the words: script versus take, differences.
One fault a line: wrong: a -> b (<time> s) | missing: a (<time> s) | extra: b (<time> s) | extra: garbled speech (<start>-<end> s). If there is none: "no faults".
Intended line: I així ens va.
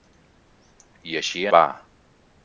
missing: ens (1.4 s)